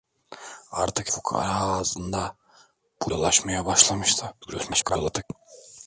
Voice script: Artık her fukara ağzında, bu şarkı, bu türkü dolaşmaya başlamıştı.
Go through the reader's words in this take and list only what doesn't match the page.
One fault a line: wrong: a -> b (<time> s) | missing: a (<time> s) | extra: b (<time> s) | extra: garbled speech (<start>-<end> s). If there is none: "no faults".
missing: her (1.1 s)
missing: şarkı bu türkü (3.1 s)
extra: garbled speech (4.4-5.2 s)